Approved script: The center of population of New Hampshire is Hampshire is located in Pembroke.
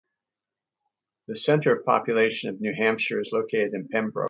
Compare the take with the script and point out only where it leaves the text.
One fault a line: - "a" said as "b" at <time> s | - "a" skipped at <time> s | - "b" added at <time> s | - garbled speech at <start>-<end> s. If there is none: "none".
- "Hampshire is" skipped at 3.3 s